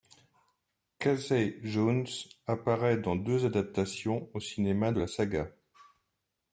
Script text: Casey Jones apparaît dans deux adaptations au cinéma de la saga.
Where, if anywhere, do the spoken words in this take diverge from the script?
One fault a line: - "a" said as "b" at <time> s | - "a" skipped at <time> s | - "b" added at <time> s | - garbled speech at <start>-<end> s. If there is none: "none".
none